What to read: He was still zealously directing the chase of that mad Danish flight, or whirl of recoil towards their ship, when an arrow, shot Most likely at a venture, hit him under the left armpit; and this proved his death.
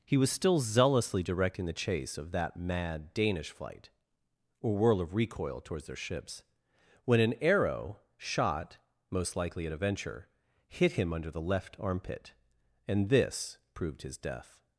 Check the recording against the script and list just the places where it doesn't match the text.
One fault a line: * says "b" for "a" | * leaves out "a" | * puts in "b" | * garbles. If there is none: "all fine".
* says "ships" for "ship"